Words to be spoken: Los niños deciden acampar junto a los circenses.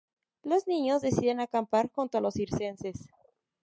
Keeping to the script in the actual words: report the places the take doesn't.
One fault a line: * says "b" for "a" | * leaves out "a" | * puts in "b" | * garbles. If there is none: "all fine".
all fine